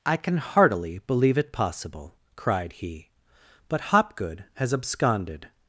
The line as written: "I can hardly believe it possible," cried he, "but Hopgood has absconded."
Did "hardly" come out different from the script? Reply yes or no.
yes